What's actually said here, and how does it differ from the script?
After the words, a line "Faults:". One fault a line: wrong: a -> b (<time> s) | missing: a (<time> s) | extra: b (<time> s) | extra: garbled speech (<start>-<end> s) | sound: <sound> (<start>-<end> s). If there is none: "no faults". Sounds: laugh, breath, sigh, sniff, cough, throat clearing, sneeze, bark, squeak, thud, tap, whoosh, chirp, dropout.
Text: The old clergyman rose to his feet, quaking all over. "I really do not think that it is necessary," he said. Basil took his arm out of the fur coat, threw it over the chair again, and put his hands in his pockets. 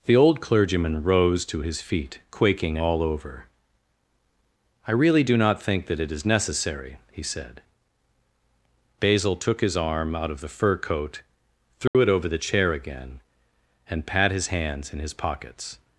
The old clergyman rose to his feet, quaking all over. "I really do not think that it is necessary," he said. Basil took his arm out of the fur coat, threw it over the chair again, and pat his hands in his pockets.
Faults:
sound: dropout (11.9-11.9 s)
wrong: put -> pat (14.1 s)